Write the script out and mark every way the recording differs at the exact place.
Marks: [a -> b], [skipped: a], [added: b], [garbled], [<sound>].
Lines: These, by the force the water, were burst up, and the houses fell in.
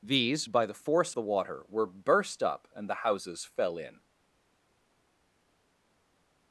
These, by the force the water, were burst up, and the houses fell in.